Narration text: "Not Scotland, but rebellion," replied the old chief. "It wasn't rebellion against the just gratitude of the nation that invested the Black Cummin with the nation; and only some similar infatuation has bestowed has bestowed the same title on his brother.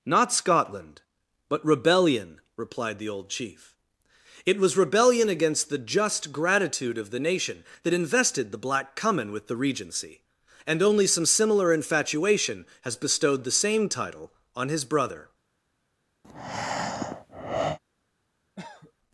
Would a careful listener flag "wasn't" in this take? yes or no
yes